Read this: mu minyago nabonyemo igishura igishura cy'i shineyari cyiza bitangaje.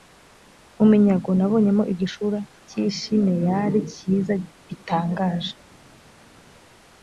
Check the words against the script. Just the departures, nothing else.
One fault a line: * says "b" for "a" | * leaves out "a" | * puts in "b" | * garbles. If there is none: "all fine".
* leaves out "igishura"